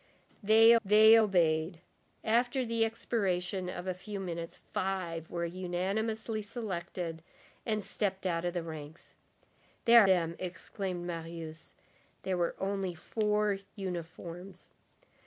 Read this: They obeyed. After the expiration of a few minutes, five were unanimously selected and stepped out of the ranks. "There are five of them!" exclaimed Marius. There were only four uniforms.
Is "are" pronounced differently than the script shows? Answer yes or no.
yes